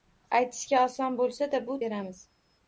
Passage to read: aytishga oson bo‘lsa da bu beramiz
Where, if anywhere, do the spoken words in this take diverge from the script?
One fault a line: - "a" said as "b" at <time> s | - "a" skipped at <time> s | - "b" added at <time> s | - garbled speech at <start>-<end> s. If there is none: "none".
none